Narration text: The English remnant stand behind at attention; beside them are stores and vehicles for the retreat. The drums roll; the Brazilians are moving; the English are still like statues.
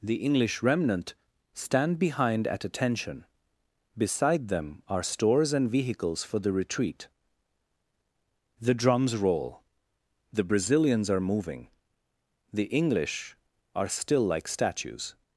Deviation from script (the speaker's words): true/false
false